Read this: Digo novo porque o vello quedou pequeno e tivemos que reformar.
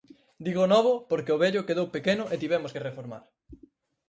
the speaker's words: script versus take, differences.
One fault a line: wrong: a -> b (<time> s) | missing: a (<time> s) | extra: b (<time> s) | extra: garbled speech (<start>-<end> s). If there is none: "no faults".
no faults